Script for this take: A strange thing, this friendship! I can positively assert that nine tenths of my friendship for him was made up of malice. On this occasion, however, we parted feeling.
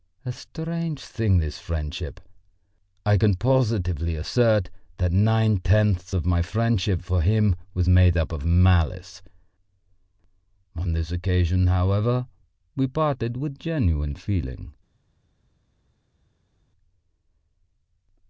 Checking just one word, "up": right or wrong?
right